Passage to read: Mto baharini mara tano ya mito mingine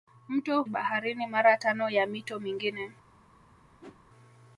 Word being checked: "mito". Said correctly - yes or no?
yes